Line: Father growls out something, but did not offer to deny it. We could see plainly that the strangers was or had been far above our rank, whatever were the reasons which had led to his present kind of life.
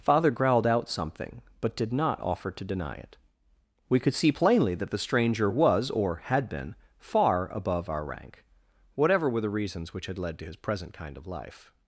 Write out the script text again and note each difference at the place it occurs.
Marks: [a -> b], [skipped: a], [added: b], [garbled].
Father [growls -> growled] out something, but did not offer to deny it. We could see plainly that the [strangers -> stranger] was or had been far above our rank, whatever were the reasons which had led to his present kind of life.